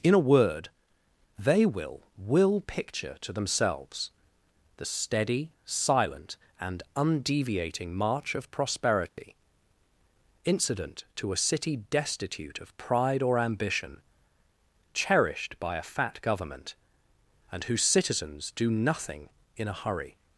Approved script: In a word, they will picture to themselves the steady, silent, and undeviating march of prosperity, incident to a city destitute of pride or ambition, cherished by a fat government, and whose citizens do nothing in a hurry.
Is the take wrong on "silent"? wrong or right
right